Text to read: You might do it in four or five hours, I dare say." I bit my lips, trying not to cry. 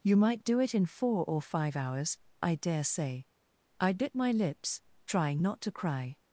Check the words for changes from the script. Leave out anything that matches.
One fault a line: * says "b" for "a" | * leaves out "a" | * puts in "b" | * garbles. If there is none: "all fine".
all fine